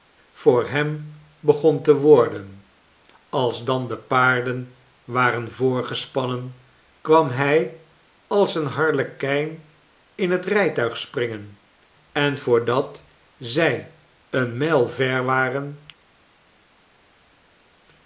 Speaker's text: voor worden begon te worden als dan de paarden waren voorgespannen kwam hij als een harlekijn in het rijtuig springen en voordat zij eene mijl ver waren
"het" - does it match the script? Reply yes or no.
yes